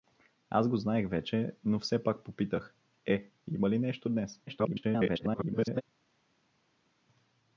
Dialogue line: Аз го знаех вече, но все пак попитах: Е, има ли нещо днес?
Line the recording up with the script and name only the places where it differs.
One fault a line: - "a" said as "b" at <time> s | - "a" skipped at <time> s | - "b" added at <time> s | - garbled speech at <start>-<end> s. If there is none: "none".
- garbled speech at 4.5-5.8 s